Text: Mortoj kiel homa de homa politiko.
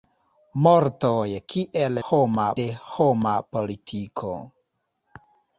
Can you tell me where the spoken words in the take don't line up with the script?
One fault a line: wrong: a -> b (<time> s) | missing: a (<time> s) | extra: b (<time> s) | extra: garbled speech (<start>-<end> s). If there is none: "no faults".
no faults